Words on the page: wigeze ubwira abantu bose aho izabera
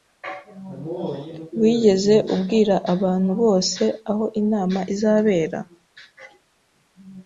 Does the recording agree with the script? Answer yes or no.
no